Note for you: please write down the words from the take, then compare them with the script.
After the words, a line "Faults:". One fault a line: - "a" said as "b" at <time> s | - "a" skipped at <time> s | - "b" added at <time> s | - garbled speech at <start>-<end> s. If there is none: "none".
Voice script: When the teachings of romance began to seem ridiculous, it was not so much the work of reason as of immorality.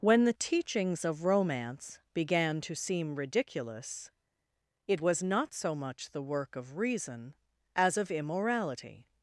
When the teachings of romance began to seem ridiculous, it was not so much the work of reason as of immorality.
Faults:
none